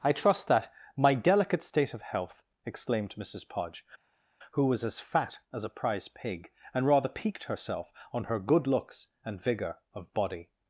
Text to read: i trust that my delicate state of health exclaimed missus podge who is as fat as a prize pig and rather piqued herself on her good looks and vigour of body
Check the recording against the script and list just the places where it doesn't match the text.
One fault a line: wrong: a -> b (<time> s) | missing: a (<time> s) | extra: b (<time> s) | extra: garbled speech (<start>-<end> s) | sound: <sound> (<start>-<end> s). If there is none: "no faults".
wrong: is -> was (4.7 s)